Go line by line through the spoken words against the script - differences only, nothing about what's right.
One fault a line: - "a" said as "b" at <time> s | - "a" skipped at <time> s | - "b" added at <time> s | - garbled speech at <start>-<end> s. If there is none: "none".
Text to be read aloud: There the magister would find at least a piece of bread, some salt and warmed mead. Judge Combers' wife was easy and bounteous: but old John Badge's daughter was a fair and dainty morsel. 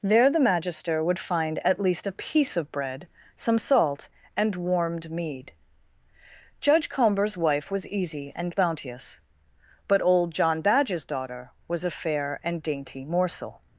none